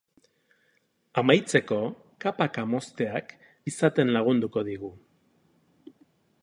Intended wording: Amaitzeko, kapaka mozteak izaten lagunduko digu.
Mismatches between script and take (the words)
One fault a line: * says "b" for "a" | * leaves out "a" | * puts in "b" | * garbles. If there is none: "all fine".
all fine